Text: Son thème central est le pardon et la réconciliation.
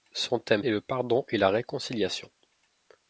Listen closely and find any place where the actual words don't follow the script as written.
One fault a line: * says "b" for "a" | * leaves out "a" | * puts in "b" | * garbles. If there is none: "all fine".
* leaves out "central"